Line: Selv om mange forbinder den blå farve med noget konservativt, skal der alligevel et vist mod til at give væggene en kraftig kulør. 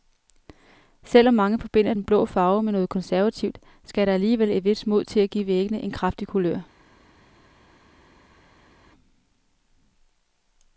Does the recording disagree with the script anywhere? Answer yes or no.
no